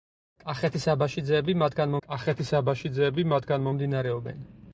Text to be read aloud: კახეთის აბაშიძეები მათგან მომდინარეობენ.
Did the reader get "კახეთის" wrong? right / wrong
right